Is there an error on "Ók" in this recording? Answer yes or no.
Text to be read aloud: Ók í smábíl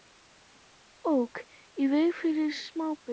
no